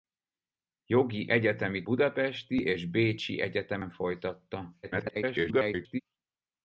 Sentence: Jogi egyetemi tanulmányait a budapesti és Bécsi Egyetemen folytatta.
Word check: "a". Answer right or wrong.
wrong